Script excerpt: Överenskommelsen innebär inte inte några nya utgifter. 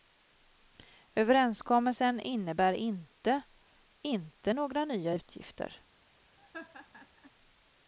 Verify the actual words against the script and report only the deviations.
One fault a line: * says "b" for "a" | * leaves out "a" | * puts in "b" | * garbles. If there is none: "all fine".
all fine